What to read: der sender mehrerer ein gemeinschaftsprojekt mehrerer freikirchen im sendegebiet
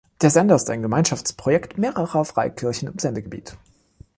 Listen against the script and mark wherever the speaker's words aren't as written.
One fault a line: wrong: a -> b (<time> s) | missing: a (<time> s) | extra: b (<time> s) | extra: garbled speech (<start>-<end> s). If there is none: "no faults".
wrong: mehrerer -> ist (0.6 s)